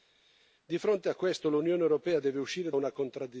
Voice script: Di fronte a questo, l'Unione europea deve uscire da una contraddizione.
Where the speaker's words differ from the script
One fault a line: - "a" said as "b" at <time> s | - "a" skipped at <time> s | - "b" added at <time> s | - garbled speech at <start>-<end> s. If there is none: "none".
- "da" skipped at 2.7 s